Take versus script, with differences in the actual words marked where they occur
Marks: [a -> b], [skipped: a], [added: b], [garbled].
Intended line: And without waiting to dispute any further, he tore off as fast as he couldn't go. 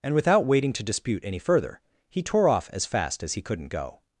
And without waiting to dispute any further, he tore off as fast as he couldn't go.